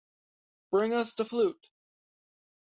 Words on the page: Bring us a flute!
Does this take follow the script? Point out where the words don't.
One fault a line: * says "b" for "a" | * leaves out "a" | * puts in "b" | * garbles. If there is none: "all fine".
* says "the" for "a"